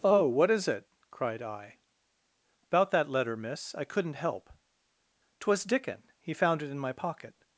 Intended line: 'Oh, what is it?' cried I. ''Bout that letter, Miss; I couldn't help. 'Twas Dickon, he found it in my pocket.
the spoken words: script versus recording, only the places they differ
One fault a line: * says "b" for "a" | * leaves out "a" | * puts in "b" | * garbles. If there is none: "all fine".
all fine